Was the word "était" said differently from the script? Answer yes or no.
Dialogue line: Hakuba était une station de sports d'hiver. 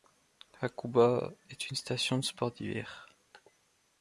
yes